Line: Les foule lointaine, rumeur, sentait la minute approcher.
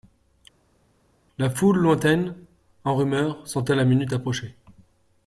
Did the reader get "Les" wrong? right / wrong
wrong